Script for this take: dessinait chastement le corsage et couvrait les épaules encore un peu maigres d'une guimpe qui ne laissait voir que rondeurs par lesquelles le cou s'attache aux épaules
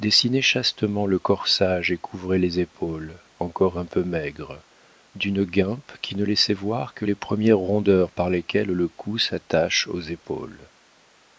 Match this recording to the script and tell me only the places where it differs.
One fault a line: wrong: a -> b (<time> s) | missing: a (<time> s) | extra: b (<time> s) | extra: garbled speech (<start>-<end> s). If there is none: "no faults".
extra: les premières (7.0 s)